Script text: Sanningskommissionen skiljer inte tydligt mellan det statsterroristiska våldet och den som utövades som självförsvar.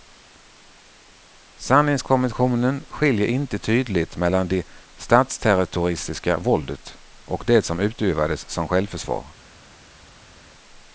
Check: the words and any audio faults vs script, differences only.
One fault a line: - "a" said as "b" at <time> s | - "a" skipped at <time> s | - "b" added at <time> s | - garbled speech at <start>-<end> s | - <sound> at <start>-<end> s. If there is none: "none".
- "den" said as "det" at 7.5 s